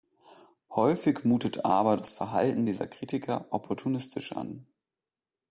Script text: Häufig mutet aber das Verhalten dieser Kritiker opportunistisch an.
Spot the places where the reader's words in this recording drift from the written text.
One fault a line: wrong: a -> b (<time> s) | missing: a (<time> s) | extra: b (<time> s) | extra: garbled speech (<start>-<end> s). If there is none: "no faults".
no faults